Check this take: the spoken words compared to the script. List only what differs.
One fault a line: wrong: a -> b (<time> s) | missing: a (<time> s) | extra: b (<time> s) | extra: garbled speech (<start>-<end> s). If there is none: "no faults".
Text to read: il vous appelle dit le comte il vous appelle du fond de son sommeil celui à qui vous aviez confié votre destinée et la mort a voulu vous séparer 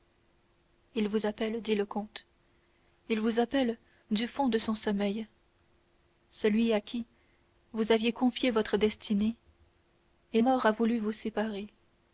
missing: la (10.4 s)